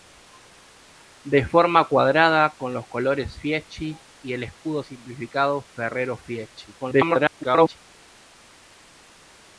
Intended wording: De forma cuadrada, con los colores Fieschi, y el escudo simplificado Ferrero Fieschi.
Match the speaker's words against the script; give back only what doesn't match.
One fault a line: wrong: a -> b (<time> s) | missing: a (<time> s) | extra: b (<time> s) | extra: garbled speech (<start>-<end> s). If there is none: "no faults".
extra: garbled speech (6.8-7.8 s)